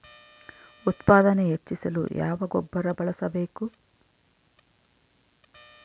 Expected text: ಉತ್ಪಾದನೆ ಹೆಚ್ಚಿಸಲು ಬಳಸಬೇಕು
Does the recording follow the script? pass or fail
fail